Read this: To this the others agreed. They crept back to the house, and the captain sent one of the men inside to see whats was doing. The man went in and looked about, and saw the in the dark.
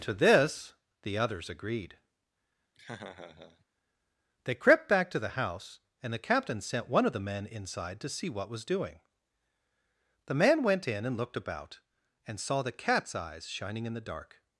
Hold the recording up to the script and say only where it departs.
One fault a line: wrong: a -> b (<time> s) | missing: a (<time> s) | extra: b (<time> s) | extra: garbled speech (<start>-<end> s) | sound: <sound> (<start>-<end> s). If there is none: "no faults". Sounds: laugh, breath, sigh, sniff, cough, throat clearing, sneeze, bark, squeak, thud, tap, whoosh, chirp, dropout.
sound: laugh (2.7-3.6 s)
wrong: whats -> what (8.3 s)
extra: cat's eyes shining (12.7 s)